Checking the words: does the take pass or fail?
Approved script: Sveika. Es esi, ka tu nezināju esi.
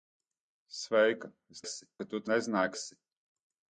pass